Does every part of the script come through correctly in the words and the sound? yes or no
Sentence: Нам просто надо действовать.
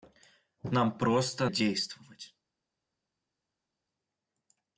no